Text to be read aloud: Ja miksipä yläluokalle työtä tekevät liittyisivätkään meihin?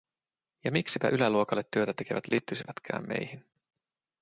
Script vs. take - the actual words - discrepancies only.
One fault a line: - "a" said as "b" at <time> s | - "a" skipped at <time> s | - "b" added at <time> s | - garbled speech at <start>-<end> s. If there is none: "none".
none